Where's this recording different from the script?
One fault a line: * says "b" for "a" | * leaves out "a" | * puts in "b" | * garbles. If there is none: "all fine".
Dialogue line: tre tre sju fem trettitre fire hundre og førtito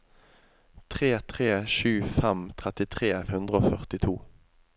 * leaves out "fire"